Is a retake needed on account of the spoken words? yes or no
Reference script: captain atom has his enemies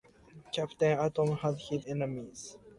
no